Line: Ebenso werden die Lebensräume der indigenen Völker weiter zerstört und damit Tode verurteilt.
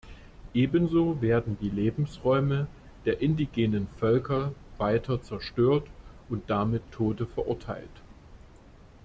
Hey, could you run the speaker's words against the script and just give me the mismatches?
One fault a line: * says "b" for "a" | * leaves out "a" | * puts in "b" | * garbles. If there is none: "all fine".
all fine